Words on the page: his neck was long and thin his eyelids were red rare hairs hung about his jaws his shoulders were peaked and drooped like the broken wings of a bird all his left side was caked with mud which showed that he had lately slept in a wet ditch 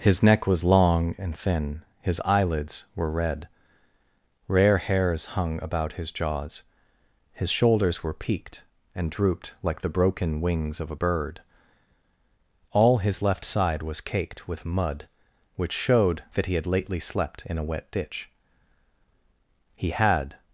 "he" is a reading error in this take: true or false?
false